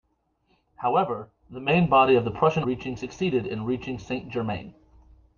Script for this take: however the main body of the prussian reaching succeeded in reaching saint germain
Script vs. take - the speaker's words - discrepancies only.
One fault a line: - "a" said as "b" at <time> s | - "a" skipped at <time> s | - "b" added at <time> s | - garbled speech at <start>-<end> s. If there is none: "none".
none